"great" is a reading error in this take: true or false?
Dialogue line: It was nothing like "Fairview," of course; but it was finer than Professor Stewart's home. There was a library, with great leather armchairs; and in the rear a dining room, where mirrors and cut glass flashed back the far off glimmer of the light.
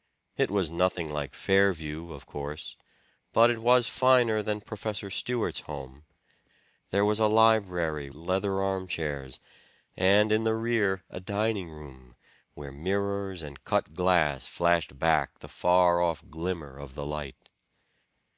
true